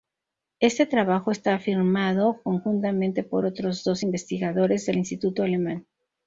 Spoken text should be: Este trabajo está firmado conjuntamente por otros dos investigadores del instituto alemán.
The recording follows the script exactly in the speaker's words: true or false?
true